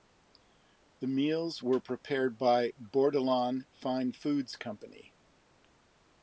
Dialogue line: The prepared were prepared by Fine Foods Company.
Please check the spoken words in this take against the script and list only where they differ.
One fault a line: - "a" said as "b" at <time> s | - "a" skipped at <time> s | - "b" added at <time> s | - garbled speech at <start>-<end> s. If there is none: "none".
- "prepared" said as "meals" at 1.1 s
- "Bordelon" added at 2.8 s